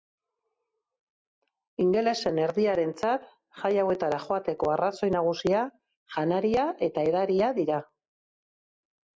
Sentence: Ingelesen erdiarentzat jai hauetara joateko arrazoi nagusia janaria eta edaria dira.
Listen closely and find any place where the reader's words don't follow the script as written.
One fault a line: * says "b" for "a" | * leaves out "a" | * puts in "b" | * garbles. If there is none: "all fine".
all fine